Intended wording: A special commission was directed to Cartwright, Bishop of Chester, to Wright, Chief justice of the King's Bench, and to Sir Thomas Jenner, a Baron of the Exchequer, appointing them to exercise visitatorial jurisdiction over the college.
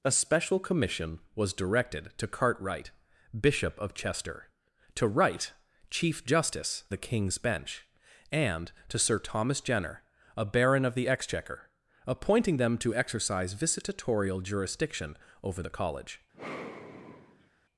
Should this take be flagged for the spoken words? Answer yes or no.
yes